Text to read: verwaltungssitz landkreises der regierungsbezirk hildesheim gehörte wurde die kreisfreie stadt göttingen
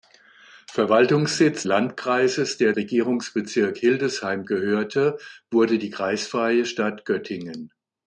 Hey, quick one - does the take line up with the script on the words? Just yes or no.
yes